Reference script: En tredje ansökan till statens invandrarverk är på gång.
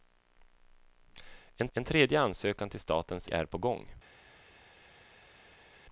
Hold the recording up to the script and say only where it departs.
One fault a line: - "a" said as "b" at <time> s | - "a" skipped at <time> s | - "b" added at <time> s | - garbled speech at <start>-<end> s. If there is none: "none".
- "en" added at 1.7 s
- "invandrarverk" skipped at 3.3 s